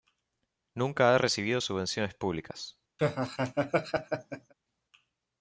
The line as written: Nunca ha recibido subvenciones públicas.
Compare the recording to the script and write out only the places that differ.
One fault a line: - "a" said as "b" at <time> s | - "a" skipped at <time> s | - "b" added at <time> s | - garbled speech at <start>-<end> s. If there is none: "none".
none